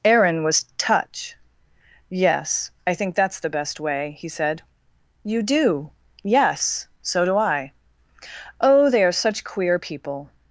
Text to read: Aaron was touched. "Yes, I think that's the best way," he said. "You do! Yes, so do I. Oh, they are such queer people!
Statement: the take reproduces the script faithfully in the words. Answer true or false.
false